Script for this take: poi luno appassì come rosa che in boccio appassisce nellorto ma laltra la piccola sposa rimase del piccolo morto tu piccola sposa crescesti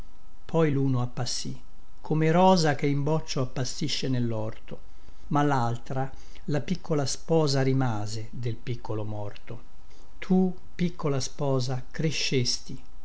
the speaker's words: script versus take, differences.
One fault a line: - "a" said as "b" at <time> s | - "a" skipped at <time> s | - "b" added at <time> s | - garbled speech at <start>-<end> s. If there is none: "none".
none